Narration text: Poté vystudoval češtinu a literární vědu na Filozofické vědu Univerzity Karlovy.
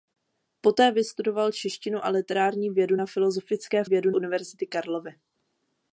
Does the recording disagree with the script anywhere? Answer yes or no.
no